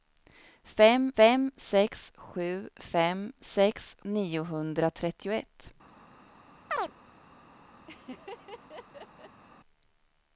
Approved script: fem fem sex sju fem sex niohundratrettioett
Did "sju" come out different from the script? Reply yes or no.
no